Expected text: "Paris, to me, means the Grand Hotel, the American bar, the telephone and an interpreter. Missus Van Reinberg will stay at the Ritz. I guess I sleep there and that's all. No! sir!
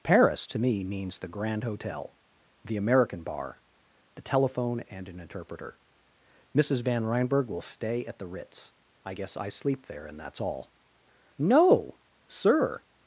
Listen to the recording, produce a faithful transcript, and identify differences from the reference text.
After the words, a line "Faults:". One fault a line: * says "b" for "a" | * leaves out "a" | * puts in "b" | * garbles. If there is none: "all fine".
"Paris, to me, means the Grand Hotel, the American bar, the telephone and an interpreter. Missus Van Reinberg will stay at the Ritz. I guess I sleep there and that's all. No! sir!
Faults:
all fine